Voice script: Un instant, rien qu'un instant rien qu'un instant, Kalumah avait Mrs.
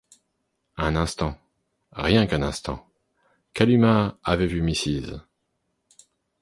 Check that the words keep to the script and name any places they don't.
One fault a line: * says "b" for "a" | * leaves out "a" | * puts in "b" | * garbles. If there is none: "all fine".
* leaves out "rien qu'un instant"
* puts in "vu"